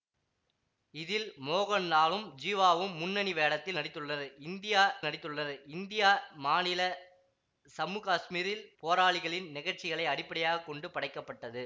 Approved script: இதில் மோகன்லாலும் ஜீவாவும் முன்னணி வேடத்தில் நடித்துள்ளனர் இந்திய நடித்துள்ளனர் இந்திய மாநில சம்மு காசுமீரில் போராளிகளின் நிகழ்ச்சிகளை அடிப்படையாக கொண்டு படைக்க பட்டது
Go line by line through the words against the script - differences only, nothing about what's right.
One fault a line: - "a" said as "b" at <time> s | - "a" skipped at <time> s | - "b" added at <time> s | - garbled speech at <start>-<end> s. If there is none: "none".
none